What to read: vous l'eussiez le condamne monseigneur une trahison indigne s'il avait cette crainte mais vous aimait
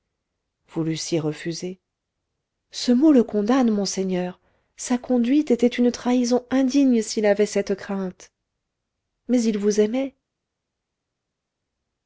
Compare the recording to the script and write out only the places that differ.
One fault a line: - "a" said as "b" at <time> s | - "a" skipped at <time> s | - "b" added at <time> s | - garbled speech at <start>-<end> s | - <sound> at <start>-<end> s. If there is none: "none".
- "refusé ce mot" added at 1.2 s
- "sa conduite était" added at 4.8 s
- "il" added at 9.4 s